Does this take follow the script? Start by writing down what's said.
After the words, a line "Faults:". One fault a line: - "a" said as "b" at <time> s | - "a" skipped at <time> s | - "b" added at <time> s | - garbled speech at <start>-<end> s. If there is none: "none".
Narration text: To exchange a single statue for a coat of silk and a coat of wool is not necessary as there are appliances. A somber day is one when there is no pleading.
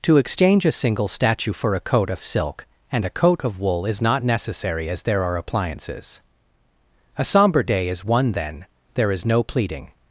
To exchange a single statue for a coat of silk and a coat of wool is not necessary as there are appliances. A somber day is one then there is no pleading.
Faults:
- "when" said as "then" at 8.3 s